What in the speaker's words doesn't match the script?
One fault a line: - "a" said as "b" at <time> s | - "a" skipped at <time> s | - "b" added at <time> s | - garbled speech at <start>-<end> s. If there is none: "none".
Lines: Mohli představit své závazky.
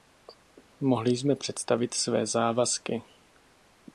- "jsme" added at 1.1 s